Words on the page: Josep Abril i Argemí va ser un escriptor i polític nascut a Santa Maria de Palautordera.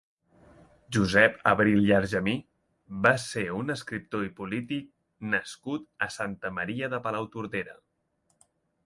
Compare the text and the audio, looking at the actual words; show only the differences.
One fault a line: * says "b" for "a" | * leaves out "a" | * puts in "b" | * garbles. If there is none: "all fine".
all fine